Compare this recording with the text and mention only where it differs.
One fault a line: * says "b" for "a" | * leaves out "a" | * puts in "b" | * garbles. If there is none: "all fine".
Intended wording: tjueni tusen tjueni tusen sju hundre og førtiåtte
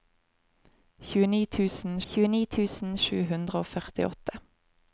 all fine